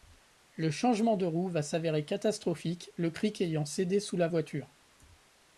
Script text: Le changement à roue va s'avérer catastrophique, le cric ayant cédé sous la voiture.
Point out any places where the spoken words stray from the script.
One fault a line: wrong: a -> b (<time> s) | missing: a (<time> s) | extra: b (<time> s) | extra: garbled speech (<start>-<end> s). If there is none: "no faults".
wrong: à -> de (1.1 s)